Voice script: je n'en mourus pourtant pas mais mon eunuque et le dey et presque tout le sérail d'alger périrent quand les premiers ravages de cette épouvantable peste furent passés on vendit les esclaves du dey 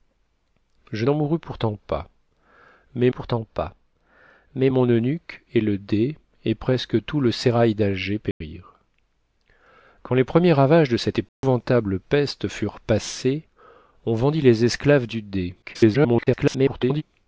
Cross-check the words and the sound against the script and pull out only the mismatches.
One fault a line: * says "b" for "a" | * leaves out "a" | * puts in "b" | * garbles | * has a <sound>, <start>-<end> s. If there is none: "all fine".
* puts in "pourtant pas mais"
* has a dropout, 8.3-8.4 s
* has a dropout, 11.3-11.4 s
* garbles